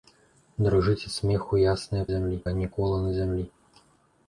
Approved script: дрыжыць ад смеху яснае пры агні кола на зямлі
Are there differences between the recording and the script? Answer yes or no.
yes